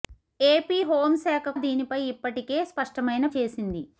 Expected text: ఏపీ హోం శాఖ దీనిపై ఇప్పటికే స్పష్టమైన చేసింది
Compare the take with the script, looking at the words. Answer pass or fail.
pass